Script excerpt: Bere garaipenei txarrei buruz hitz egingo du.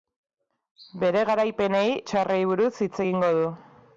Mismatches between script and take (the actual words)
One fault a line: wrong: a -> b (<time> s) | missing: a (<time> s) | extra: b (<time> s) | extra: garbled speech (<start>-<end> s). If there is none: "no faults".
no faults